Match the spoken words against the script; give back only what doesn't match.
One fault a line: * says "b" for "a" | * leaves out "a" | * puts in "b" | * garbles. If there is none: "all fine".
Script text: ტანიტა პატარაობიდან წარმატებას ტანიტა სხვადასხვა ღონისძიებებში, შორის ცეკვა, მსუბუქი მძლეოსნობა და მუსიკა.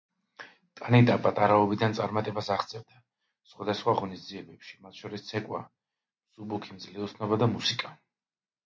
* says "აღწევდა" for "ტანიტა"
* puts in "მათ"